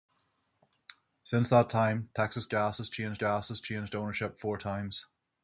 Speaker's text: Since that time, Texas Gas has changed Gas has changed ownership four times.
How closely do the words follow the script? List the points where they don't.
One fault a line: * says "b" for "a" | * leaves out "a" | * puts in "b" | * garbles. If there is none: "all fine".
all fine